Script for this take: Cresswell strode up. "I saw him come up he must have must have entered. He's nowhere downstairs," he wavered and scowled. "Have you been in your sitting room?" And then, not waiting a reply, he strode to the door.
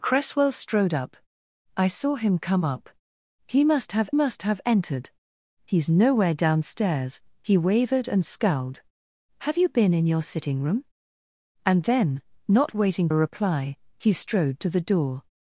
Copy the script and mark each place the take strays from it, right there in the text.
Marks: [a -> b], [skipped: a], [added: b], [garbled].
Cresswell strode up. "I saw him come up he must have must have entered. He's nowhere downstairs," he wavered and scowled. "Have you been in your sitting room?" And then, not waiting a reply, he strode to the door.